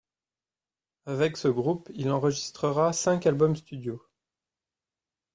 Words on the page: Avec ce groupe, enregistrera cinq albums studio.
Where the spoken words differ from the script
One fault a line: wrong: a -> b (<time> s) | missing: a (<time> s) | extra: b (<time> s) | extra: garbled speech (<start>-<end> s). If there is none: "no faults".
extra: il (1.9 s)